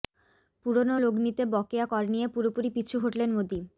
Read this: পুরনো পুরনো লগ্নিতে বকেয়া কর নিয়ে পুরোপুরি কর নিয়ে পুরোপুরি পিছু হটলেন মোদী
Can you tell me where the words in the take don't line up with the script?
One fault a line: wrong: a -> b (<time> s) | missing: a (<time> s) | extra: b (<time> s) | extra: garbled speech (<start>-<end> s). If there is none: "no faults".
missing: পুরনো (0.9 s)
missing: কর নিয়ে পুরোপুরি (2.7 s)